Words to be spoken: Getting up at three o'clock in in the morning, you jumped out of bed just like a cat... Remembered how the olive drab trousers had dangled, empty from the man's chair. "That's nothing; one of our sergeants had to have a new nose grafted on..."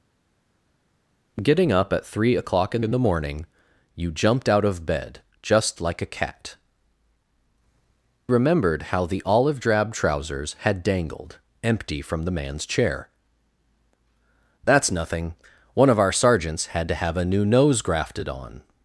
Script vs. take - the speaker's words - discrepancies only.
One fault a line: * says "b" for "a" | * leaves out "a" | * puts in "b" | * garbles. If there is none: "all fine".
all fine